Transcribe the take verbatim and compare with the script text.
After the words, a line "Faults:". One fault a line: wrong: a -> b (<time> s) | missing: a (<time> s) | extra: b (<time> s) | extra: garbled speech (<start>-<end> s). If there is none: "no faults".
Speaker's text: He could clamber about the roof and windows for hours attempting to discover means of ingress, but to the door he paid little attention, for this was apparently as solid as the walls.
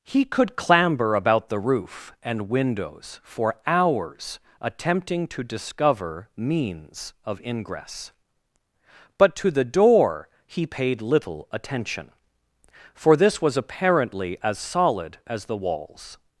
He could clamber about the roof and windows for hours attempting to discover means of ingress, but to the door he paid little attention, for this was apparently as solid as the walls.
Faults:
no faults